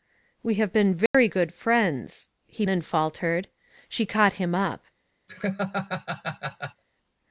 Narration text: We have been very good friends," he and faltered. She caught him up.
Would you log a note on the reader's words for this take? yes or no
no